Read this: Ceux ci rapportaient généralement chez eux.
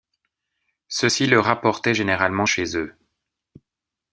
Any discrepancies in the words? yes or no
yes